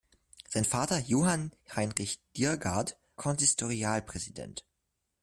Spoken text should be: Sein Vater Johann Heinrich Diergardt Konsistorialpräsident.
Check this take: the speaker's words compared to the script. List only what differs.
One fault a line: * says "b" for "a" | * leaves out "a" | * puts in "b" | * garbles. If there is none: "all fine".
all fine